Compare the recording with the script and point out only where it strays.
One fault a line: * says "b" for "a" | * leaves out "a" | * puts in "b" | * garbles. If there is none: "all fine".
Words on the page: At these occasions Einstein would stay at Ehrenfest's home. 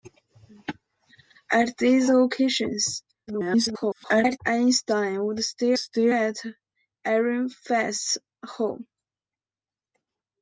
* garbles
* puts in "stay"